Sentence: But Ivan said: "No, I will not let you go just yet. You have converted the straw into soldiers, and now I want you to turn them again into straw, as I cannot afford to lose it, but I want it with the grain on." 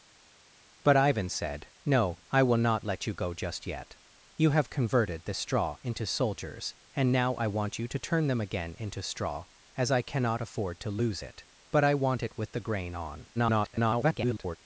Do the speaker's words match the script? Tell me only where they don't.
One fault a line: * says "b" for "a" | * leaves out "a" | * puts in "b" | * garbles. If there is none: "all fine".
* garbles